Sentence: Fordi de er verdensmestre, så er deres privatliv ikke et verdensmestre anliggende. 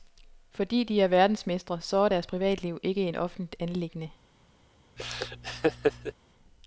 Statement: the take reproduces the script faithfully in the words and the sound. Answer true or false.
false